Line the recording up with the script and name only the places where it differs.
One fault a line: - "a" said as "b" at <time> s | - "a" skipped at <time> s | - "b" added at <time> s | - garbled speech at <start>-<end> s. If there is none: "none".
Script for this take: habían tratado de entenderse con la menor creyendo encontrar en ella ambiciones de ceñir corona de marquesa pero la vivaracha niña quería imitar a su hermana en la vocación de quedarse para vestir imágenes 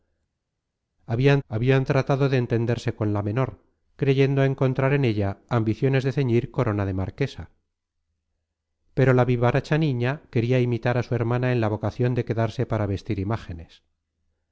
- "habían" added at 1.5 s